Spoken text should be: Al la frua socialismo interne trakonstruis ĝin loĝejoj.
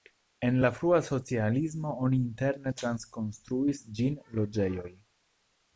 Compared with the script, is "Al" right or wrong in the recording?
wrong